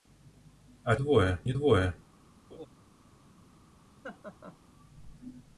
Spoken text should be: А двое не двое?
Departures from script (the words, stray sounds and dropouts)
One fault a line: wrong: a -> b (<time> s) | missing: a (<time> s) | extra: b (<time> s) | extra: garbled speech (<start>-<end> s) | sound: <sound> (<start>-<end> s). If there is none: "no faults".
sound: laugh (2.5-2.7 s)
sound: laugh (4.0-4.6 s)